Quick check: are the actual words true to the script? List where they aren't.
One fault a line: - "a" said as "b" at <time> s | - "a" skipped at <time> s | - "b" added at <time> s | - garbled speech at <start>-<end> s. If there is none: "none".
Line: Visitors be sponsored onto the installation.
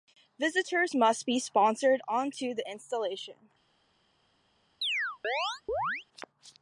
- "must" added at 0.9 s